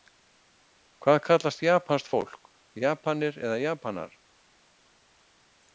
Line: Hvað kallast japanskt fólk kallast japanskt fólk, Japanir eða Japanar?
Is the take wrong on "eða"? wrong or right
right